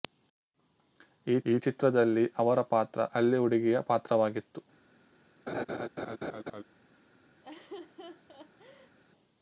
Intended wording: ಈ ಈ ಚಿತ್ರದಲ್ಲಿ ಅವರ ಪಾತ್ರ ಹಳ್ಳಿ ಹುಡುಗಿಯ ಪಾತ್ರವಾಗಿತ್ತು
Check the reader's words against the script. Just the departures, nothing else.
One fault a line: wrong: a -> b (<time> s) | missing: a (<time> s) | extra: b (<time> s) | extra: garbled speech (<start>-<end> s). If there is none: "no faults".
no faults